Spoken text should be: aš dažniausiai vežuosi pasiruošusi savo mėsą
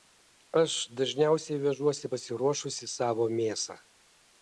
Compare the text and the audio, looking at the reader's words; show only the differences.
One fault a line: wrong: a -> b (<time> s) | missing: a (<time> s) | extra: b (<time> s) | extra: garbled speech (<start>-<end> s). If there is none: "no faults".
no faults